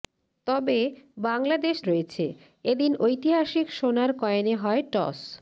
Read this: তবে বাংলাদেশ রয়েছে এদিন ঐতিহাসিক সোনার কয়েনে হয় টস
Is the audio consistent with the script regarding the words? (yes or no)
yes